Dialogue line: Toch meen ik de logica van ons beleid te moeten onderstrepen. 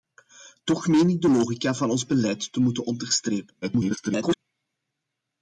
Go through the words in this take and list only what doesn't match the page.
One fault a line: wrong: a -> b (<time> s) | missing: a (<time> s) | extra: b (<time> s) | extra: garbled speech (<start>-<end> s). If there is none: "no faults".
extra: garbled speech (3.6-4.4 s)